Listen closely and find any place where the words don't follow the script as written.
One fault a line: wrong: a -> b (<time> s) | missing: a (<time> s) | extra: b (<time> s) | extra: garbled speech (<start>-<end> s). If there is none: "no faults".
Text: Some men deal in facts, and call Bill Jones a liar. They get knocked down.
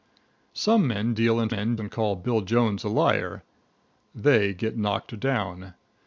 wrong: facts -> men (1.5 s)